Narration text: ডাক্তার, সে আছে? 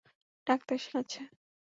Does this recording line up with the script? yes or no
yes